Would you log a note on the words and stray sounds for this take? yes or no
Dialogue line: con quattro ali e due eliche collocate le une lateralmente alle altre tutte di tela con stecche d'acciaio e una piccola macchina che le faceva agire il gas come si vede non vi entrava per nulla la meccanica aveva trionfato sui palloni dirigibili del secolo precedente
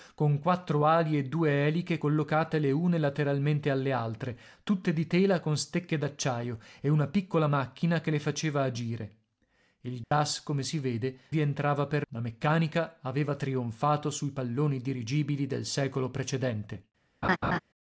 yes